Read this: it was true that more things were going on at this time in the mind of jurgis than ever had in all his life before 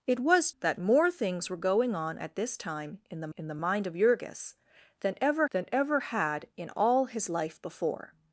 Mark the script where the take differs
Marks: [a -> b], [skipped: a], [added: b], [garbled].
it was [skipped: true] that more things were going on at this time in the [added: in the] mind of jurgis than ever [added: than ever] had in all his life before